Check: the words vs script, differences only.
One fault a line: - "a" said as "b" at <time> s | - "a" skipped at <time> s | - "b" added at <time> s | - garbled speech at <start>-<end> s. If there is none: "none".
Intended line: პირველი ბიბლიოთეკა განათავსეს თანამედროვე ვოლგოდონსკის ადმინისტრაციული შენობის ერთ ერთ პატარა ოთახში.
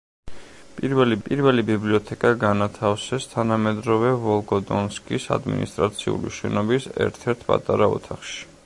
- "პირველი" added at 1.3 s